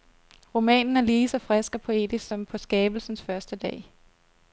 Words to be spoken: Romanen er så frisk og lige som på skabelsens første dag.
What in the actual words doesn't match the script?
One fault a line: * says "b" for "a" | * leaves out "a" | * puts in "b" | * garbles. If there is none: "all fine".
* puts in "lige"
* says "poetisk" for "lige"